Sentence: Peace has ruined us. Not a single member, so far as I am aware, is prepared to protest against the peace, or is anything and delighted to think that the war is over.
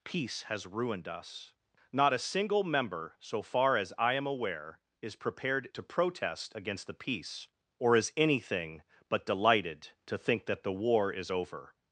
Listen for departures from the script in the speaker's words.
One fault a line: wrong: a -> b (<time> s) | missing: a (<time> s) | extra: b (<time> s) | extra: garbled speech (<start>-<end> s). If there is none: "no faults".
wrong: and -> but (9.1 s)